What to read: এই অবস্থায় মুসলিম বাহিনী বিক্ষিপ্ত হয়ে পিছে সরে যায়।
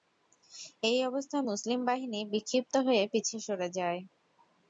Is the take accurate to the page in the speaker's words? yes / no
yes